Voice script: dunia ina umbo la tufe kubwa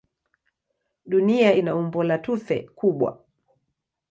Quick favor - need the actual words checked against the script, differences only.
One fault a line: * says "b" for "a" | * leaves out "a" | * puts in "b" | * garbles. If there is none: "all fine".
all fine